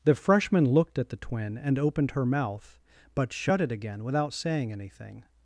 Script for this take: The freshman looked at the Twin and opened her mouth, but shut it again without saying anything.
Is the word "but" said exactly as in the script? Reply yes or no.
yes